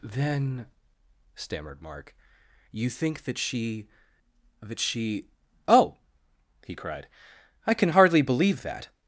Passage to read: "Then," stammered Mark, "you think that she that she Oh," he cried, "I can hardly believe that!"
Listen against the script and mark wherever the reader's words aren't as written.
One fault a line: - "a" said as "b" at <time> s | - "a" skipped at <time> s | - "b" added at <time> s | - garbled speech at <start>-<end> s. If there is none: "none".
none